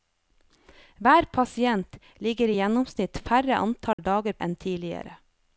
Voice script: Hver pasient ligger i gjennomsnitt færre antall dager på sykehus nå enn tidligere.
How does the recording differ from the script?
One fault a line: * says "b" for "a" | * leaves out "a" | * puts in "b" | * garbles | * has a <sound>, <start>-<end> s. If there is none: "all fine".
* has a dropout, 3.9-4.0 s
* leaves out "på sykehus nå"